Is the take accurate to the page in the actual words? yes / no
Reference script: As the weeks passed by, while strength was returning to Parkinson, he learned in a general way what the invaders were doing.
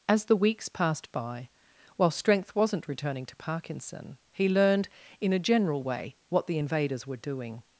no